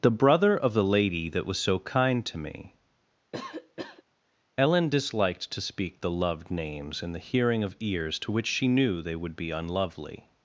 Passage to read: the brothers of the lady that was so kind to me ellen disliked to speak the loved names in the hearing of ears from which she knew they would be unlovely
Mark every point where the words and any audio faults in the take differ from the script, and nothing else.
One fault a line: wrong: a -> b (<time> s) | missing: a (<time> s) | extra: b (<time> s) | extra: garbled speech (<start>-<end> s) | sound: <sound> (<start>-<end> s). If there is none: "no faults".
wrong: brothers -> brother (0.1 s)
sound: cough (3.3-4.0 s)
wrong: from -> to (8.2 s)